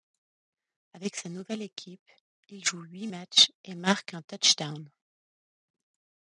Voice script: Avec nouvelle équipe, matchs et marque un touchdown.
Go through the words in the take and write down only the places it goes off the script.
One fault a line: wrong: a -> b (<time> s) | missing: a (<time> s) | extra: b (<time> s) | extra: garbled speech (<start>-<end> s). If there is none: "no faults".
extra: sa (1.1 s)
extra: il joue huit (2.5 s)